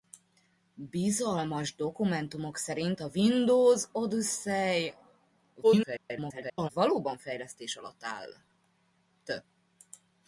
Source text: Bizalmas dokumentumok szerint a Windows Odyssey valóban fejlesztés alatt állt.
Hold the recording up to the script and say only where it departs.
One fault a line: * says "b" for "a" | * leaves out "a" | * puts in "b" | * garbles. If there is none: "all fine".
* garbles